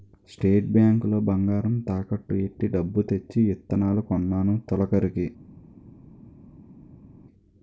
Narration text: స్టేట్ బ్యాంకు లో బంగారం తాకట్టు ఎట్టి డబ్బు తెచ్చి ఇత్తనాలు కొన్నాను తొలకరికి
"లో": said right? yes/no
yes